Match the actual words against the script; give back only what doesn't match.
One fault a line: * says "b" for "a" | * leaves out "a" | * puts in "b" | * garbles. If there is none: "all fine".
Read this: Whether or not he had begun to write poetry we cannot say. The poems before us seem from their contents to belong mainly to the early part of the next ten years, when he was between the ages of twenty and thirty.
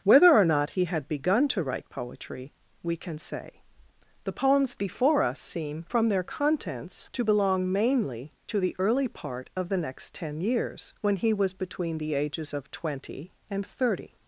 * says "can" for "cannot"